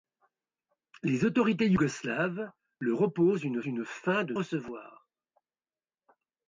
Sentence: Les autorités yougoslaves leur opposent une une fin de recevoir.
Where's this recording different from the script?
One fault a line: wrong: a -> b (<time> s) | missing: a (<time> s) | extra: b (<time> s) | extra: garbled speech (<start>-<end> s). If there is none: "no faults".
no faults